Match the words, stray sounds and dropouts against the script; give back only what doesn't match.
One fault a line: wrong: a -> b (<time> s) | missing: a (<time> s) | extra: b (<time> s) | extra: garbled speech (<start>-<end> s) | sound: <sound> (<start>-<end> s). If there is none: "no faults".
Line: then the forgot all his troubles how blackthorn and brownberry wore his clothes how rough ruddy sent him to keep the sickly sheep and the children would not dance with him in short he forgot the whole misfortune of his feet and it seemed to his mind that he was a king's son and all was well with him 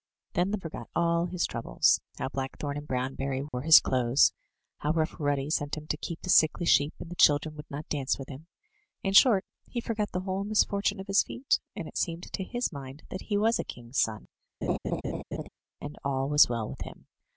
sound: dropout (3.5-3.5 s)
sound: laugh (14.6-15.5 s)